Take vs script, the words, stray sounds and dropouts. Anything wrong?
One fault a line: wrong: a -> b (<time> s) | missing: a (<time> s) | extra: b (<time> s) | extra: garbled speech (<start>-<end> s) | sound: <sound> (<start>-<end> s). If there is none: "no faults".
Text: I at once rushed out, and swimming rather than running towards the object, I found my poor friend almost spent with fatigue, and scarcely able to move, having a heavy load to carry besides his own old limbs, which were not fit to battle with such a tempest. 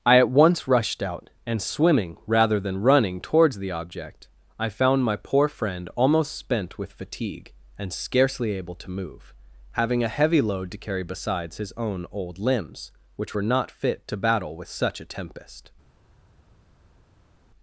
no faults